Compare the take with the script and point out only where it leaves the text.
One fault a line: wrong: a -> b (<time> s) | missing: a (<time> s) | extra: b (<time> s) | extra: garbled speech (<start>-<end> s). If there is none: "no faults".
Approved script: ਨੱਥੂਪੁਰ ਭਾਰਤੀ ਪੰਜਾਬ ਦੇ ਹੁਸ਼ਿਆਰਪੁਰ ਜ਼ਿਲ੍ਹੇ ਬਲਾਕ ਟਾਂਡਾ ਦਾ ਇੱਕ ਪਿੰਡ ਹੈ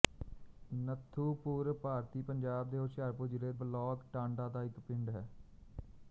no faults